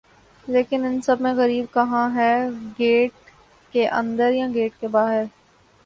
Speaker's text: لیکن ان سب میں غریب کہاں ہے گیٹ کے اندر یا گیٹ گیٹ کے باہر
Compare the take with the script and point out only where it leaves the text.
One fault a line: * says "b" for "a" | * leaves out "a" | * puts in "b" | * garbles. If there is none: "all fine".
* leaves out "گیٹ"